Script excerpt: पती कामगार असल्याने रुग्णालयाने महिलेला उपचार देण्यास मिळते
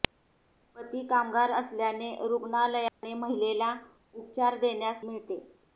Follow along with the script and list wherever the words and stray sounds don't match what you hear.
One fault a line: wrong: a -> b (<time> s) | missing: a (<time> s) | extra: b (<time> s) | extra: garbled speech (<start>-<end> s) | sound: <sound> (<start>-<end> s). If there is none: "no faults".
sound: dropout (2.9-3.0 s)